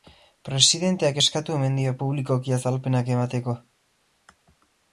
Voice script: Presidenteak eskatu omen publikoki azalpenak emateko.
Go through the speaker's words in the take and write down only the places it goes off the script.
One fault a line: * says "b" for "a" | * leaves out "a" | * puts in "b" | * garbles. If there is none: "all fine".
* puts in "dio"